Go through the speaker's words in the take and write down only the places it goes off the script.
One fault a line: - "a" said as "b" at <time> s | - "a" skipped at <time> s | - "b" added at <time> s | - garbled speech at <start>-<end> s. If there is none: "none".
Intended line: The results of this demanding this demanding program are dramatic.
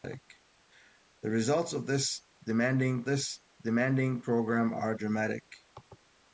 none